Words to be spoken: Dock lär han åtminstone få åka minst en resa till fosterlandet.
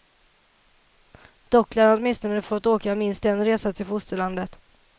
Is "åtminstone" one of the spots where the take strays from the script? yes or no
no